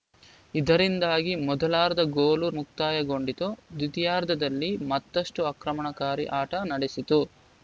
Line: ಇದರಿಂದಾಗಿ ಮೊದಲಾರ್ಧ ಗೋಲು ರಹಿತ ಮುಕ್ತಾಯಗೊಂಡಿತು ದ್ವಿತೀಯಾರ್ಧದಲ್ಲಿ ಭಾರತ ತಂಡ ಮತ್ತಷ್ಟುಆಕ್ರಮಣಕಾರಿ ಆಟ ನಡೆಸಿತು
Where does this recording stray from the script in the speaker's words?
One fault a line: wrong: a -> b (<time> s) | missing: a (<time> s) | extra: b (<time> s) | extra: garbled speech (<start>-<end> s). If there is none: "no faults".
missing: ರಹಿತ (2.5 s)
missing: ಭಾರತ ತಂಡ (4.7 s)